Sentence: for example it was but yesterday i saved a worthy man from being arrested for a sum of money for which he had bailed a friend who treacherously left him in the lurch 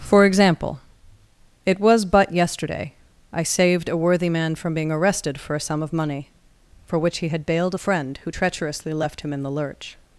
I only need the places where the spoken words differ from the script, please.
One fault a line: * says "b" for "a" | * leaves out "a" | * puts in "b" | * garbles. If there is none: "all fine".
all fine